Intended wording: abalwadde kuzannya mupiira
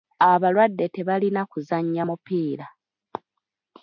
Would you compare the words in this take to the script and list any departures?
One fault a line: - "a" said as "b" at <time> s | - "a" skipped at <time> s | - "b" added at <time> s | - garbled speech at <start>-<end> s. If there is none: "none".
- "tebalina" added at 0.9 s